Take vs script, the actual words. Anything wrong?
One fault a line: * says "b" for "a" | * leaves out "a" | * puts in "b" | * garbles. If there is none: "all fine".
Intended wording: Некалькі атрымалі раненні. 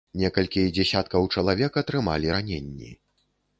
* puts in "дзесяткаў чалавек"